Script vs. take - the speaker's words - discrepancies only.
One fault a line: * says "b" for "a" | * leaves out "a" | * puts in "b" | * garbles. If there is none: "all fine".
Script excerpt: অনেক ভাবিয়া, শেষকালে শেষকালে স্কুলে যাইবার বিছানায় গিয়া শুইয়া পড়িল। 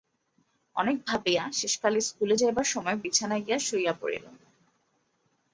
* leaves out "শেষকালে"
* puts in "সময়"